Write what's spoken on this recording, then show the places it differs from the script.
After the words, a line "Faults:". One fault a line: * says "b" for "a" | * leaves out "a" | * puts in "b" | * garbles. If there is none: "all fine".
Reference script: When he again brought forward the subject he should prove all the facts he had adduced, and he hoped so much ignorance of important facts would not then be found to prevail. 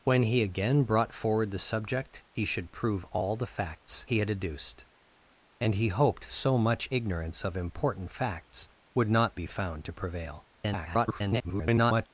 When he again brought forward the subject he should prove all the facts he had adduced, and he hoped so much ignorance of important facts would not be found to prevail. [garbled]
Faults:
* leaves out "then"
* garbles